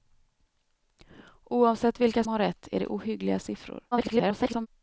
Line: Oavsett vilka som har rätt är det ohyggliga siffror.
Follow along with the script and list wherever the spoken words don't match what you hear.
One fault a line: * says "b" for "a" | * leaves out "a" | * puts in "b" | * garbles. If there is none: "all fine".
* leaves out "som"
* garbles